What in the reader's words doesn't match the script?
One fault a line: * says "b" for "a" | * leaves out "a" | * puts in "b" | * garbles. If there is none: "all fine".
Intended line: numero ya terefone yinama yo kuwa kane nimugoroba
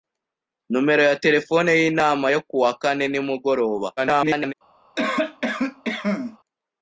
* garbles